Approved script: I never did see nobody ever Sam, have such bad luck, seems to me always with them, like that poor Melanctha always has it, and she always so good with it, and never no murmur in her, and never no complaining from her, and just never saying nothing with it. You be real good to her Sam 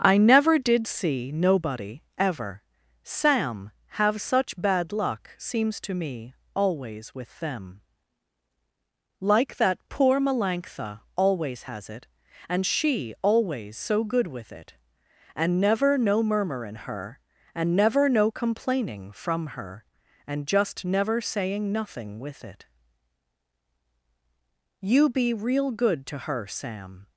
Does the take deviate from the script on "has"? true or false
false